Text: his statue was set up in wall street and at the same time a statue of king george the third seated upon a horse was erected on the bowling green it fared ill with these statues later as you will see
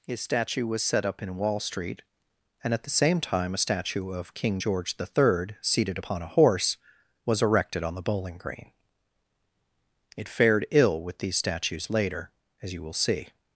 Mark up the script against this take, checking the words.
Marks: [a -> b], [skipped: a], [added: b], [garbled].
his statue was set up in wall street and at the same time a statue of king george the third seated upon a horse was erected on the bowling green it fared ill with these statues later as you will see